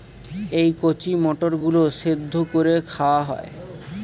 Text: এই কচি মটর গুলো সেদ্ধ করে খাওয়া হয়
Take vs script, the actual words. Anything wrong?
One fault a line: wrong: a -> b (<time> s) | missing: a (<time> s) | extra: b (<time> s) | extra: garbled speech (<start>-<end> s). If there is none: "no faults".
no faults